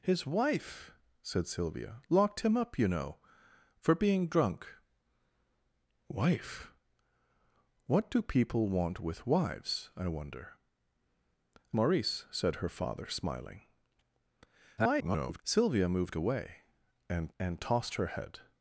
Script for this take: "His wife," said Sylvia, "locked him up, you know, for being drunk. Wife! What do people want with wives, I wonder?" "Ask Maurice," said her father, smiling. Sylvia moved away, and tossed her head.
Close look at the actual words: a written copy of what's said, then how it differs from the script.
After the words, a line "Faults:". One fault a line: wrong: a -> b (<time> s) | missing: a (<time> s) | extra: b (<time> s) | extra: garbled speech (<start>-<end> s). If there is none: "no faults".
"His wife," said Sylvia, "locked him up, you know, for being drunk. Wife! What do people want with wives, I wonder?" "Maurice," said her father, smiling. [garbled] Sylvia moved away, and and tossed her head.
Faults:
missing: Ask (10.5 s)
extra: garbled speech (14.8-15.4 s)
extra: and (17.4 s)